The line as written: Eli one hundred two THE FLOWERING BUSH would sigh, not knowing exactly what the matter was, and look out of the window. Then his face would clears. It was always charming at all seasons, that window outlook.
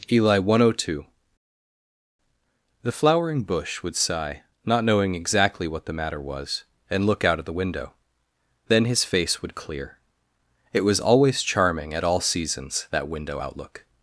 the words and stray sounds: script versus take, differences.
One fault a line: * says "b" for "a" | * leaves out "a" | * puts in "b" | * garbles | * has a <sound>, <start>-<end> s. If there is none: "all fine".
* says "clear" for "clears"